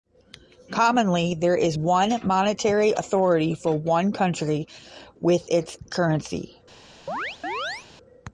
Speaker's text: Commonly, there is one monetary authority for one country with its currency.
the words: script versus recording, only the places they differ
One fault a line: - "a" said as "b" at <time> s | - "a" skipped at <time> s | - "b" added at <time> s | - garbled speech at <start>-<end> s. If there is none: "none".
none